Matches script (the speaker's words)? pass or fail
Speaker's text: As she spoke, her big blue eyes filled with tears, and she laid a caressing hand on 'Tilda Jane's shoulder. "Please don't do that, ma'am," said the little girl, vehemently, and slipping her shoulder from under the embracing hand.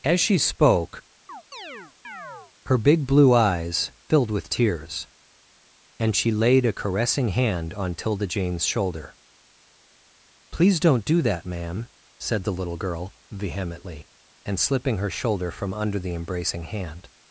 pass